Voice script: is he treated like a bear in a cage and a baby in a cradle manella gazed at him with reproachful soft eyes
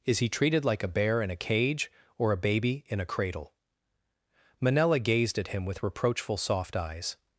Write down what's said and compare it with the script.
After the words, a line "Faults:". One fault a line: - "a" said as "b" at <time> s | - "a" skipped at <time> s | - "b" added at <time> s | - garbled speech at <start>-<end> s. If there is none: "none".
is he treated like a bear in a cage or a baby in a cradle manella gazed at him with reproachful soft eyes
Faults:
- "and" said as "or" at 2.2 s